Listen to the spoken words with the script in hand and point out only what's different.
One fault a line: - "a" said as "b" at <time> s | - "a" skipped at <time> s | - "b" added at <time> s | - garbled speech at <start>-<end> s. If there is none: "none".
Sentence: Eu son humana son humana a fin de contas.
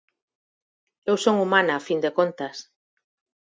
- "son humana" skipped at 1.7 s